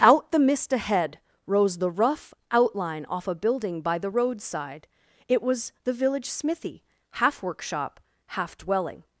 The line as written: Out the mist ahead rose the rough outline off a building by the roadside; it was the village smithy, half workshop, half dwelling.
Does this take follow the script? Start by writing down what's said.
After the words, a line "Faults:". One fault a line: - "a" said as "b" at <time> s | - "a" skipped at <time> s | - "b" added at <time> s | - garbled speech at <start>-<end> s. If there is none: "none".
Out the mist ahead rose the rough outline off a building by the roadside; it was the village smithy, half workshop, half dwelling.
Faults:
none